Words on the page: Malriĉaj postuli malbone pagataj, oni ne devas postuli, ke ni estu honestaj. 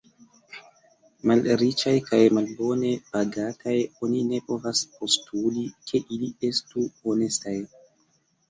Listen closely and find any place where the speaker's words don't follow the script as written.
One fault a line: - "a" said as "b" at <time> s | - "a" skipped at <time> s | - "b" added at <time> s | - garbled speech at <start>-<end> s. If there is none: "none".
- "postuli" said as "kaj" at 2.1 s
- "devas" said as "povas" at 4.5 s
- "ni" said as "ili" at 6.2 s